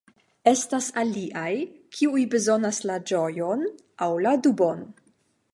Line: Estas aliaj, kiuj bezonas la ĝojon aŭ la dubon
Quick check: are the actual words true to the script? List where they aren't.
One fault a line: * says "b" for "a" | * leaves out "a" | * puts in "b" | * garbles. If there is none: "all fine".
all fine